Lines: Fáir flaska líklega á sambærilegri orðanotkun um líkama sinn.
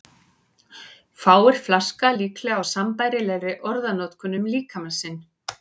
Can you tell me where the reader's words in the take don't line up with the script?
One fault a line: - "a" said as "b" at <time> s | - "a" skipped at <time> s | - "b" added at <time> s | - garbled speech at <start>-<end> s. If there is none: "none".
none